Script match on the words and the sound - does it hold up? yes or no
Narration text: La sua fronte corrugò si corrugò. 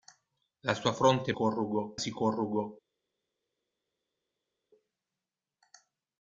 yes